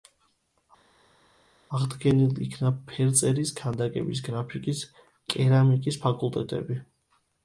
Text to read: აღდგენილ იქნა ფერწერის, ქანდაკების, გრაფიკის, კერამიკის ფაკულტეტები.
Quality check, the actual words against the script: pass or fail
pass